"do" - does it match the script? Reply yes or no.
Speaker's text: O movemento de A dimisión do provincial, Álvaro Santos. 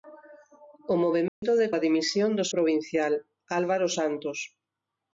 yes